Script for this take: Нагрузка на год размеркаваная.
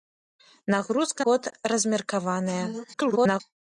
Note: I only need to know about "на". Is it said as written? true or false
false